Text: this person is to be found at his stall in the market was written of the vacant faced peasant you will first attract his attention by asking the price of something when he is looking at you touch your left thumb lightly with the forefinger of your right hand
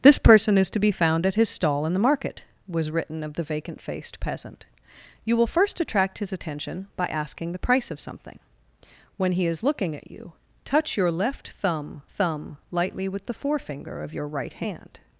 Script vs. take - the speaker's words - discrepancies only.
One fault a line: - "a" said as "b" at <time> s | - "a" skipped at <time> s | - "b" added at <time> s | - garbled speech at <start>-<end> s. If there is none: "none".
- "thumb" added at 12.1 s